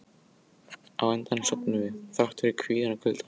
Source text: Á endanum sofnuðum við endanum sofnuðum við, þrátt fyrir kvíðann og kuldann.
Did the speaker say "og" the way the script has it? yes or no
yes